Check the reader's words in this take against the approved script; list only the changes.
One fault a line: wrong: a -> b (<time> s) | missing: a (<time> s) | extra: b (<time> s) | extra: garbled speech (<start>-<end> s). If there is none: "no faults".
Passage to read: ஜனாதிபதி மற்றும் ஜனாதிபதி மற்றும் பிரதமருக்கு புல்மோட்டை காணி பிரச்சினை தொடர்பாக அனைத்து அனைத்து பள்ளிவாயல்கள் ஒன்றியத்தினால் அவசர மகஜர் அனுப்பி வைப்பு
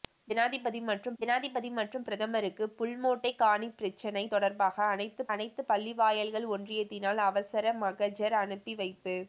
no faults